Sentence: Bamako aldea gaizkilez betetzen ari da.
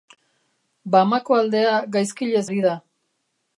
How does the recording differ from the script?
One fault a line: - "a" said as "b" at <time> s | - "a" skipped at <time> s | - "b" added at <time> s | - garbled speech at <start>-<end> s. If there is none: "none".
- "betetzen" skipped at 2.4 s